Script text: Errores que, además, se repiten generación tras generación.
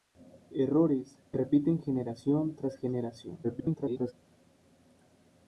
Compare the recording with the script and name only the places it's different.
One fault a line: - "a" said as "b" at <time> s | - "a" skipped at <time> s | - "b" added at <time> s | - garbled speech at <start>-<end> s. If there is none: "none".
- "que además se" skipped at 1.2 s
- garbled speech at 3.4-4.1 s